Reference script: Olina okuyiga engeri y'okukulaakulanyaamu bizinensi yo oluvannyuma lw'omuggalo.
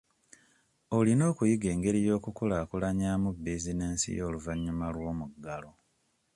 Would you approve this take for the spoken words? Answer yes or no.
yes